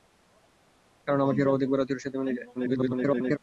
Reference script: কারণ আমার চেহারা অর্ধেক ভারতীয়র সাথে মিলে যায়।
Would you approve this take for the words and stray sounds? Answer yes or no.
no